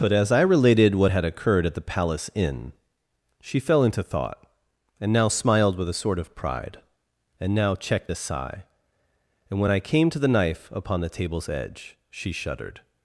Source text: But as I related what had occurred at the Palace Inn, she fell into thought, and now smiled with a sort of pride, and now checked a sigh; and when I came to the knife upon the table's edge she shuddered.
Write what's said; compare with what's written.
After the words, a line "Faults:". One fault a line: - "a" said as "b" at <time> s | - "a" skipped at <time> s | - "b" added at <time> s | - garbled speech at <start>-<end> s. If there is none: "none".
But as I related what had occurred at the Palace Inn, she fell into thought, and now smiled with a sort of pride, and now checked a sigh; and when I came to the knife upon the table's edge she shuddered.
Faults:
none